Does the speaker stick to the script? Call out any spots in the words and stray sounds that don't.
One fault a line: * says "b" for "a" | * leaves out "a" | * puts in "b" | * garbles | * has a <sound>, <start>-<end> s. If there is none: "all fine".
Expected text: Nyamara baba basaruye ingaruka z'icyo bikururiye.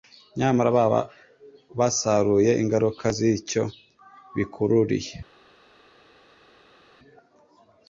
all fine